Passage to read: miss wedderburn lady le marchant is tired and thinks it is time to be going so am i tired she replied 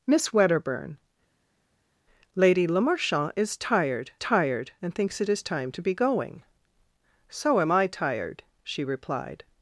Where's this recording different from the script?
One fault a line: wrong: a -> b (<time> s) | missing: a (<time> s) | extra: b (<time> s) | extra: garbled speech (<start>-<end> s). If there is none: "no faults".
extra: tired (4.2 s)